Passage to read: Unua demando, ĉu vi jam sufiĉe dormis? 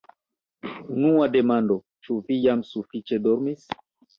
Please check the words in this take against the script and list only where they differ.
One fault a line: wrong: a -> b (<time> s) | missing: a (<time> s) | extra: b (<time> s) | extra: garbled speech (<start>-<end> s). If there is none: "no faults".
no faults